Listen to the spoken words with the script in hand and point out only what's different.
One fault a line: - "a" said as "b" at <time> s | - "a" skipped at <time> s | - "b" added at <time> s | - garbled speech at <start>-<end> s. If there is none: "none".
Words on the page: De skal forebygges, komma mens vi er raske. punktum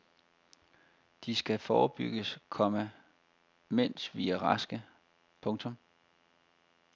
none